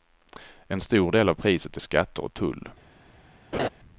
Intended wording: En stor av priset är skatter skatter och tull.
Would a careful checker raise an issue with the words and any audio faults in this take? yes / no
yes